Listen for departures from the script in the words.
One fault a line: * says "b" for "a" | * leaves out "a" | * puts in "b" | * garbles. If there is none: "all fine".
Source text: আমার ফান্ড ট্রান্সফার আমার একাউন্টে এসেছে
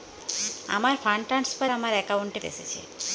all fine